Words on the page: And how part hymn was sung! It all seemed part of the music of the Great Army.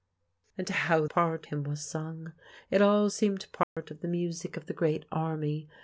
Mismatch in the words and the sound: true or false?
true